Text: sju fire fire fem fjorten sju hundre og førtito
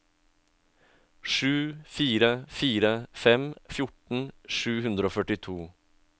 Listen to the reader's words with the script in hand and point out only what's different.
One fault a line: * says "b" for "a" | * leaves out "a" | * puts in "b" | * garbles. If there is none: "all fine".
all fine